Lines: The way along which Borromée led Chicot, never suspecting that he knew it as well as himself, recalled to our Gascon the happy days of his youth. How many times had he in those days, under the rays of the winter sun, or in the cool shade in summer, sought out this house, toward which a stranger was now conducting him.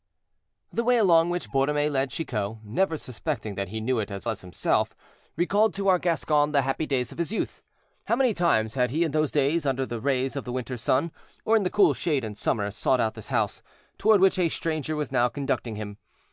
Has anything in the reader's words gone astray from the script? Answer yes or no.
yes